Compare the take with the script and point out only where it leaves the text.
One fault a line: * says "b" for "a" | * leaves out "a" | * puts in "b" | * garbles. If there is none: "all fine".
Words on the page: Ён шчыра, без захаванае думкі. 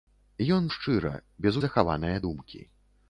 all fine